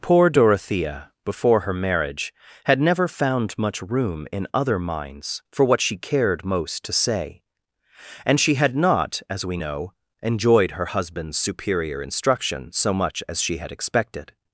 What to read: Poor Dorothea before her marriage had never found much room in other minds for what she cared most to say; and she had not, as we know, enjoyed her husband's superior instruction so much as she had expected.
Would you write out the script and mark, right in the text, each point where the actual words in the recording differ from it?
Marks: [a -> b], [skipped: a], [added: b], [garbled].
Poor Dorothea before her marriage had never found much room in other minds for what she cared most to say; and she had not, as we know, enjoyed her husband's superior instruction so much as she had expected.